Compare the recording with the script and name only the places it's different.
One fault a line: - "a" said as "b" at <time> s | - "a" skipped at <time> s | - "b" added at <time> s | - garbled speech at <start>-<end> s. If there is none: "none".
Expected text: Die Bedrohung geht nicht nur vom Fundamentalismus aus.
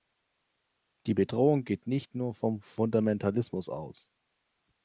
none